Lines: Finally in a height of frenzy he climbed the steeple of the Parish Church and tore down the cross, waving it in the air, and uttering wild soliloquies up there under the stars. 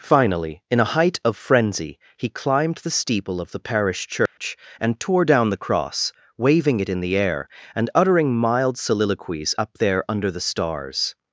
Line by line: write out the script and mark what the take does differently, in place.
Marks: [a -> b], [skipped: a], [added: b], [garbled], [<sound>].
Finally in a height of frenzy he climbed the steeple of the Parish Church [dropout] and tore down the cross, waving it in the air, and uttering [wild -> mild] soliloquies up there under the stars.